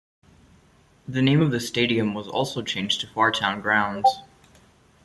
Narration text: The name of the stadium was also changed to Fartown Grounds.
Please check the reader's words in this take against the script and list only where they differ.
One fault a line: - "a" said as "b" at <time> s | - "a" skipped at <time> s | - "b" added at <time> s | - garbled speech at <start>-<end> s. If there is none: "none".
none